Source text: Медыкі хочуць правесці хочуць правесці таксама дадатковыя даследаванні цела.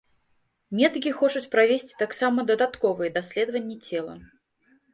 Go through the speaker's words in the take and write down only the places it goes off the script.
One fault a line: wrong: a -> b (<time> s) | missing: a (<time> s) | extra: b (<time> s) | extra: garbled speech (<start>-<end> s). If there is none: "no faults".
missing: хочуць правесці (1.9 s)